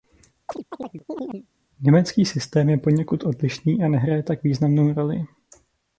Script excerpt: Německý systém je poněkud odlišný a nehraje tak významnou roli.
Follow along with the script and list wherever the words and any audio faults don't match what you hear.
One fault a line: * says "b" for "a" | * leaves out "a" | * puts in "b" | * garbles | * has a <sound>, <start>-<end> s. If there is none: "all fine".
* has a chirp, 0.5-1.5 s